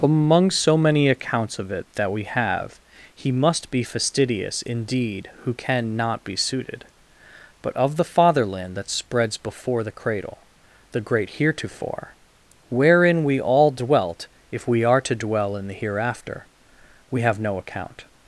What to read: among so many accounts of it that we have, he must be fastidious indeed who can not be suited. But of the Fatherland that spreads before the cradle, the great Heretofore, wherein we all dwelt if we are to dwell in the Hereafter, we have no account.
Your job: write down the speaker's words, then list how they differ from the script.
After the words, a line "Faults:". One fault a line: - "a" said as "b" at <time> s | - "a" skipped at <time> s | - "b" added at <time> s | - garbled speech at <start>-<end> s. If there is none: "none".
among so many accounts of it that we have, he must be fastidious indeed who can not be suited. But of the Fatherland that spreads before the cradle, the great Heretofore, wherein we all dwelt if we are to dwell in the Hereafter, we have no account.
Faults:
none